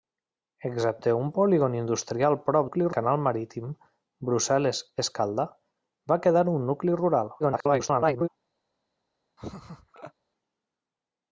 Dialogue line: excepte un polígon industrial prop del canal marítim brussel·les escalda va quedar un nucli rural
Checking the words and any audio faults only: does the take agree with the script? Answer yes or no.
no